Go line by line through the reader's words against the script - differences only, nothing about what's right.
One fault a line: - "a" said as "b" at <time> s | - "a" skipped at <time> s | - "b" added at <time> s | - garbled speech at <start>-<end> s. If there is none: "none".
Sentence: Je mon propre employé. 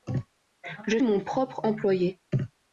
none